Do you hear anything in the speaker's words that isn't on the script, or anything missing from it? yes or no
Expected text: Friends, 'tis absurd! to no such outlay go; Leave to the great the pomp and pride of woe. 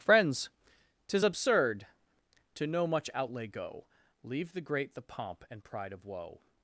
yes